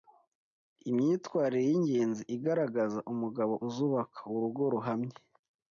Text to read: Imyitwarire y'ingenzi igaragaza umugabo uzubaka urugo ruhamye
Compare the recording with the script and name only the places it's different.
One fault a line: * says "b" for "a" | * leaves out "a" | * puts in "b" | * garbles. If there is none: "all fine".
all fine